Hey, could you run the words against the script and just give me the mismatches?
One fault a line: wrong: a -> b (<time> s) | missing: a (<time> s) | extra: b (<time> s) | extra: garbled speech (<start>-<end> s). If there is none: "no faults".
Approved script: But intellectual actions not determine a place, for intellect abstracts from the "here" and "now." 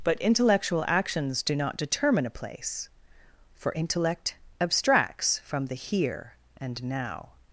extra: do (1.4 s)